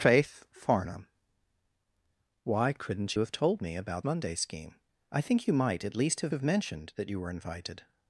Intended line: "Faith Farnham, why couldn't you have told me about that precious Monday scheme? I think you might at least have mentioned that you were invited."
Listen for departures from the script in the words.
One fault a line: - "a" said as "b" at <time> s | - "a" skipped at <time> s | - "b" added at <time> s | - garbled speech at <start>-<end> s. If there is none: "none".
- "you" skipped at 3.1 s
- "that precious" skipped at 4.0 s
- "have" added at 6.3 s